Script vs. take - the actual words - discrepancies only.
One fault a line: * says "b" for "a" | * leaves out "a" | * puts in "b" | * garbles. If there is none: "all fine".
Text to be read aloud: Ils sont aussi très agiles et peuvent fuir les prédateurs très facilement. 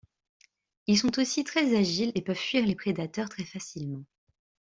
all fine